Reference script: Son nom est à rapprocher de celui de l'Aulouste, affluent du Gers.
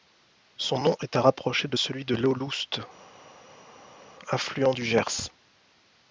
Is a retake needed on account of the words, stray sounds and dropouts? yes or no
no